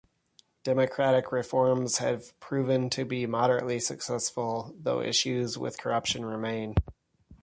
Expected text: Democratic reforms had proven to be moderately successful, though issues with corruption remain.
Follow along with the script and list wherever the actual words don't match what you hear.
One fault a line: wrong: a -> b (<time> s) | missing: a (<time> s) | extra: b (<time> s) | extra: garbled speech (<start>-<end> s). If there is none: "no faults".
wrong: had -> have (2.0 s)